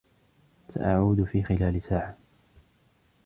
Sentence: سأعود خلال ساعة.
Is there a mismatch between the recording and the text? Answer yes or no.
yes